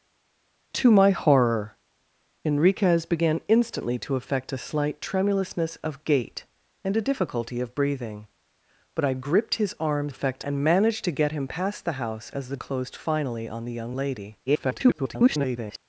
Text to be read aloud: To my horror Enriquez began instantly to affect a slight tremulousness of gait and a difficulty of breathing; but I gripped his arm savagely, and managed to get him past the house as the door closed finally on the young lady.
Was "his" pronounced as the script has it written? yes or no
yes